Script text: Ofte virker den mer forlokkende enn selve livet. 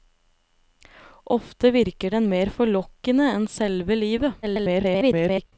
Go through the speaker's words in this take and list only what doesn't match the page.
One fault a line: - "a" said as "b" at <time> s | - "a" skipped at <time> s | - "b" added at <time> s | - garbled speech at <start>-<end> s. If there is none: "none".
- garbled speech at 4.4-5.5 s